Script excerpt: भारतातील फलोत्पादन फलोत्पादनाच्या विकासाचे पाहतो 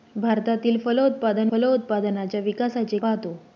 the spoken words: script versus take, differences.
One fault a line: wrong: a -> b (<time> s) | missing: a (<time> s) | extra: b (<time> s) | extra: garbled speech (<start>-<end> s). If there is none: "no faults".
no faults